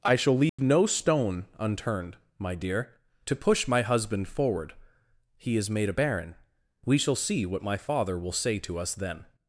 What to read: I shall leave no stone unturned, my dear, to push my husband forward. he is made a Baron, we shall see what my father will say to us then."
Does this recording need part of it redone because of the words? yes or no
no